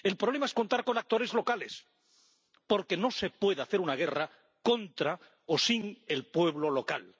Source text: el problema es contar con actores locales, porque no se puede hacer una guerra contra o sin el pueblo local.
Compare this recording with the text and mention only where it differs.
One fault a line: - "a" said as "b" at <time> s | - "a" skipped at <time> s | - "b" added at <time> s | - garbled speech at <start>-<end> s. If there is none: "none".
none